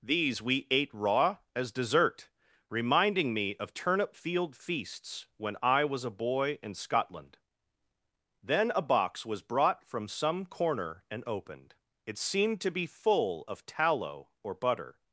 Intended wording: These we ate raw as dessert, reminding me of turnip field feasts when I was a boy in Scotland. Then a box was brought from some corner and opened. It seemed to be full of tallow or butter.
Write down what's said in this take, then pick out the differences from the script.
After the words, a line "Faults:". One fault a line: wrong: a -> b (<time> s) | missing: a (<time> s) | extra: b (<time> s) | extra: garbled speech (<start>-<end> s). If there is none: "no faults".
These we ate raw as dessert, reminding me of turnip field feasts when I was a boy in Scotland. Then a box was brought from some corner and opened. It seemed to be full of tallow or butter.
Faults:
no faults